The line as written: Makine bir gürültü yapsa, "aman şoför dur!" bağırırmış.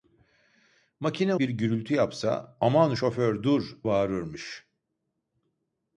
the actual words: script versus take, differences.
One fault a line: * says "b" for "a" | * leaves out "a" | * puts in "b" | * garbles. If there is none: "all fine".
all fine